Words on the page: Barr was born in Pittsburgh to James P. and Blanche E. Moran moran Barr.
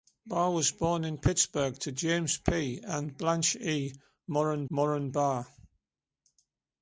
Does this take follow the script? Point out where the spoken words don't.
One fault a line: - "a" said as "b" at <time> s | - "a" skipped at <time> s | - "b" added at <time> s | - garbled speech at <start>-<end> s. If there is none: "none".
none